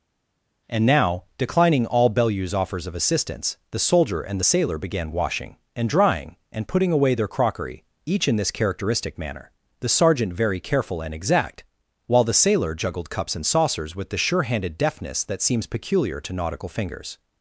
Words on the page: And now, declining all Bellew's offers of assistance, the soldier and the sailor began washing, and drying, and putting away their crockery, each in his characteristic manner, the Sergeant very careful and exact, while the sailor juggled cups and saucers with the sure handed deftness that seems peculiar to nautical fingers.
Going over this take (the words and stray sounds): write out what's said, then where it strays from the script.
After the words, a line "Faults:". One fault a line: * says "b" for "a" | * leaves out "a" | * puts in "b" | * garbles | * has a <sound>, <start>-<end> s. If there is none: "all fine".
And now, declining all Bellew's offers of assistance, the soldier and the sailor began washing, and drying, and putting away their crockery, each in this characteristic manner, the Sergeant very careful and exact, while the sailor juggled cups and saucers with the sure handed deftness that seems peculiar to nautical fingers.
Faults:
* says "this" for "his"